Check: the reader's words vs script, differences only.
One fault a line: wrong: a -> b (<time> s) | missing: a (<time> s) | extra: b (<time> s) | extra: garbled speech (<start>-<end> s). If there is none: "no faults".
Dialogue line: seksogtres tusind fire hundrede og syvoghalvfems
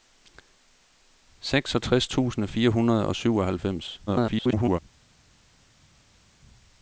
extra: garbled speech (4.1-4.8 s)